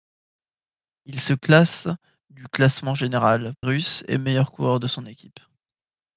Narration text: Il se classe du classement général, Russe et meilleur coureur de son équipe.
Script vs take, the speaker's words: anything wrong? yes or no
no